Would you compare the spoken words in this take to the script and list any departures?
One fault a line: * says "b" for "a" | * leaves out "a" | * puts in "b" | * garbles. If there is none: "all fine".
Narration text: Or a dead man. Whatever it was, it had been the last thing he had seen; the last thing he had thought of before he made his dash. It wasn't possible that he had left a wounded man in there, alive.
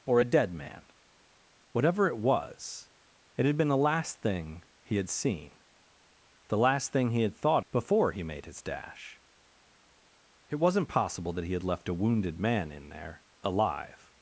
* leaves out "of"